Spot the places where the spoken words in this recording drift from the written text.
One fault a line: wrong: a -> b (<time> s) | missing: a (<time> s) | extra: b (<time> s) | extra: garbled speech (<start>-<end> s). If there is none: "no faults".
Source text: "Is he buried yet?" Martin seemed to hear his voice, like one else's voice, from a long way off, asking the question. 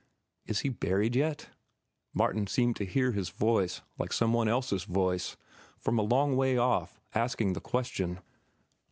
extra: some (4.1 s)